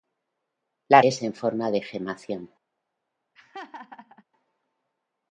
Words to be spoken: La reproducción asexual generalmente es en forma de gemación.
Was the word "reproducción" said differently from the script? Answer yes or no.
yes